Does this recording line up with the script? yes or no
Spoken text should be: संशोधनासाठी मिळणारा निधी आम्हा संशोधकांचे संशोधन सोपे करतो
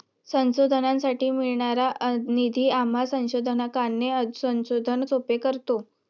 yes